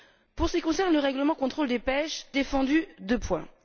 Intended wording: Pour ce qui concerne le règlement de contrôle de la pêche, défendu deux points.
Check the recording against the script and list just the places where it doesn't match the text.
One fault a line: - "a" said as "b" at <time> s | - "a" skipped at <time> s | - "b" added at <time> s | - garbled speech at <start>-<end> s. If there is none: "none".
none